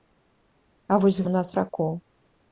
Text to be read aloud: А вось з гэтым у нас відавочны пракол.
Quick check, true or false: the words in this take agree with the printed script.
false